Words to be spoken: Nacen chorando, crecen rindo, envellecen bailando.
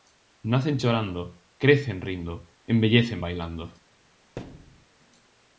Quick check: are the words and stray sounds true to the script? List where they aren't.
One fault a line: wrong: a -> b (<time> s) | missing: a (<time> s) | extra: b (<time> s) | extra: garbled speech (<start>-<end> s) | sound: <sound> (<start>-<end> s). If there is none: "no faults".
sound: thud (4.4-4.9 s)